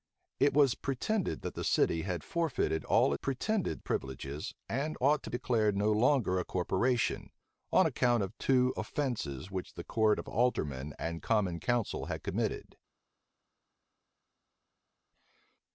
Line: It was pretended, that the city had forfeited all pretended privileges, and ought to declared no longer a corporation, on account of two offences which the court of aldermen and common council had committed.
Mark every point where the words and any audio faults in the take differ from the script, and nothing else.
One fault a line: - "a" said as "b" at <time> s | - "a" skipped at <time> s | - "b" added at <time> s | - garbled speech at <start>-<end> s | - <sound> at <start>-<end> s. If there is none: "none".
none